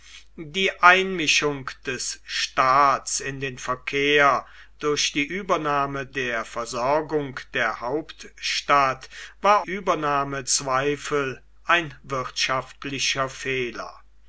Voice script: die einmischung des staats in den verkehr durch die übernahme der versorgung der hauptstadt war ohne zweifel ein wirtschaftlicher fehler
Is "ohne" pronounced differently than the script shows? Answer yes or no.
yes